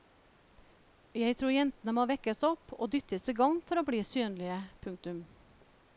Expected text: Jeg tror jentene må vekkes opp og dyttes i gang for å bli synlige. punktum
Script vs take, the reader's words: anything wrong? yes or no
no